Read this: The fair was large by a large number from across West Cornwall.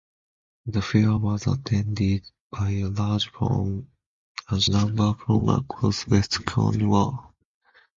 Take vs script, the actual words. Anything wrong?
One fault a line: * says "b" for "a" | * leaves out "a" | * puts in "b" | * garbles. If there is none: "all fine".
* says "attended" for "large"